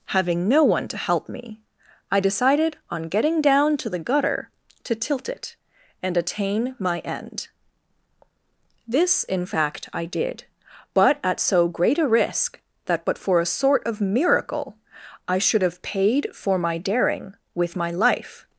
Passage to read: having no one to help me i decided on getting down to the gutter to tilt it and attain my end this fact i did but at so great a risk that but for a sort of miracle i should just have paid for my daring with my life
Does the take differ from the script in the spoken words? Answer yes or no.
yes